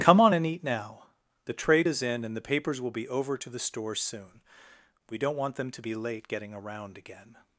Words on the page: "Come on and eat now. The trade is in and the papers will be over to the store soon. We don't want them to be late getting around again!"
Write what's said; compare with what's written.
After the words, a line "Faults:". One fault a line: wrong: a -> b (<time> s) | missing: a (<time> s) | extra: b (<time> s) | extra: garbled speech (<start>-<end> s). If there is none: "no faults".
"Come on and eat now. The trade is in and the papers will be over to the store soon. We don't want them to be late getting around again!"
Faults:
no faults